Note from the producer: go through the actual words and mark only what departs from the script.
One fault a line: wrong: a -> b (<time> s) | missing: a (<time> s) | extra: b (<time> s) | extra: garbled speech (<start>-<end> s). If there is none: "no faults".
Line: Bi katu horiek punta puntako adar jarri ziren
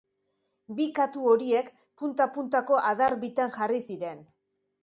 extra: bitan (3.3 s)